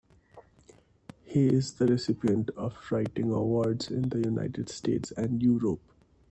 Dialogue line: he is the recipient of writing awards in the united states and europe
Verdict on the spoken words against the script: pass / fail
pass